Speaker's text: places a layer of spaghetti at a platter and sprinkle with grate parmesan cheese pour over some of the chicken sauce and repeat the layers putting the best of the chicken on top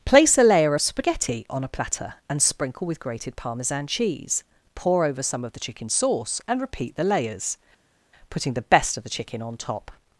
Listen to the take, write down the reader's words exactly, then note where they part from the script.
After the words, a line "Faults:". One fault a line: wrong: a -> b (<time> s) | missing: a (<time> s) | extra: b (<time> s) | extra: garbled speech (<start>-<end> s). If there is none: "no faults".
place a layer of spaghetti on a platter and sprinkle with grated parmesan cheese pour over some of the chicken sauce and repeat the layers putting the best of the chicken on top
Faults:
wrong: places -> place (0.1 s)
wrong: at -> on (1.5 s)
wrong: grate -> grated (3.0 s)